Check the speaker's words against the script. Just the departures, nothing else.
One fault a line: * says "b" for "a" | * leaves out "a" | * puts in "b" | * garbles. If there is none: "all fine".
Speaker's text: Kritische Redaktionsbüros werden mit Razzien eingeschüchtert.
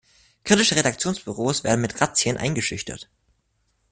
all fine